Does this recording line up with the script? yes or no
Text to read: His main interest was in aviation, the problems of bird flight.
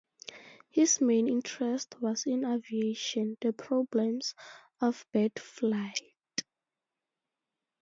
yes